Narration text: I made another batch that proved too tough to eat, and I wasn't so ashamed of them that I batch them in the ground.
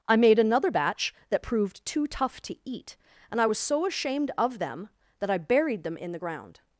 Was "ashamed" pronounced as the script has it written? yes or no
yes